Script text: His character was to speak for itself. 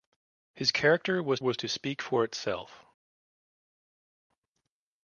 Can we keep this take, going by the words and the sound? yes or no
no